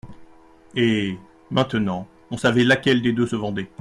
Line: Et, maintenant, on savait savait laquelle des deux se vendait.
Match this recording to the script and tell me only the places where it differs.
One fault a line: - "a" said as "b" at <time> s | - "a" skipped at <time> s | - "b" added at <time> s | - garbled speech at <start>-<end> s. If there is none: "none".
- "savait" skipped at 2.6 s